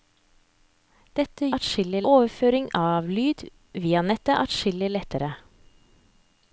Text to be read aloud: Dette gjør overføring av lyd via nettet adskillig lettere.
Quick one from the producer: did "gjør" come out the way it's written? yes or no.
no